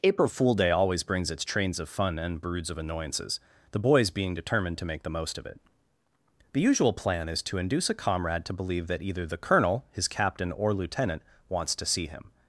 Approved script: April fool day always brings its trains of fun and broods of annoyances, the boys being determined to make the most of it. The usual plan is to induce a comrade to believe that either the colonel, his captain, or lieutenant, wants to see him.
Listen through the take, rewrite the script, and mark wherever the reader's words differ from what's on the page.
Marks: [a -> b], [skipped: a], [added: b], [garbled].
April fool day always brings its trains of fun and broods of annoyances, the boys being determined to make the most of it. The usual plan is to induce a comrade to believe that either the colonel, his captain, or lieutenant, wants to see him.